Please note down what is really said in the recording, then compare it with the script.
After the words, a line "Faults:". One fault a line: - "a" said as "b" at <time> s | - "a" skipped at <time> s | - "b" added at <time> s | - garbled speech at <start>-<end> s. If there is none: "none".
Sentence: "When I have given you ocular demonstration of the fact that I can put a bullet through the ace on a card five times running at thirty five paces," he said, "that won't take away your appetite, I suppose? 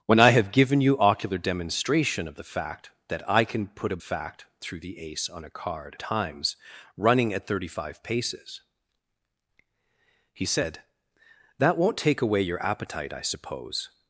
"When I have given you ocular demonstration of the fact that I can put a fact through the ace on a card times running at thirty five paces," he said, "that won't take away your appetite, I suppose?
Faults:
- "bullet" said as "fact" at 4.0 s
- "five" skipped at 6.0 s